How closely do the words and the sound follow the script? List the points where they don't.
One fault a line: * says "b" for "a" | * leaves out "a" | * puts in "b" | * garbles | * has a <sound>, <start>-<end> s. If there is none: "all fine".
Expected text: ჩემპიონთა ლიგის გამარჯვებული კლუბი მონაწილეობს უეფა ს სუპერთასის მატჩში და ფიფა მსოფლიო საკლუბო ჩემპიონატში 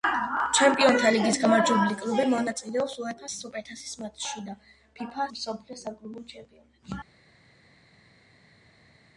all fine